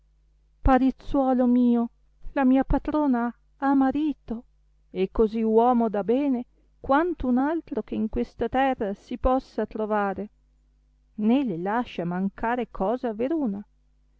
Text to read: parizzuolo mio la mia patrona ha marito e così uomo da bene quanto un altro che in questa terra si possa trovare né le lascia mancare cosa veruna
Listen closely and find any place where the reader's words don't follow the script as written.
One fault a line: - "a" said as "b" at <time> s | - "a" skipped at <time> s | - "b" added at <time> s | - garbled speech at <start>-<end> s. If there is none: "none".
none